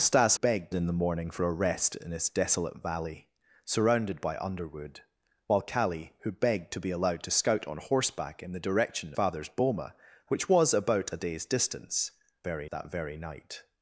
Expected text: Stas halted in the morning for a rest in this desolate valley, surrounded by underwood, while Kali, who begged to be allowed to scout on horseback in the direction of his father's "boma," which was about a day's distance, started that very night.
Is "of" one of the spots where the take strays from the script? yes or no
yes